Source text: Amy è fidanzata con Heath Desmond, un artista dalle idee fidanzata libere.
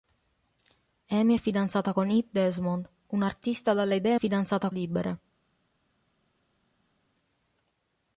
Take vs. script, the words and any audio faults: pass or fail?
pass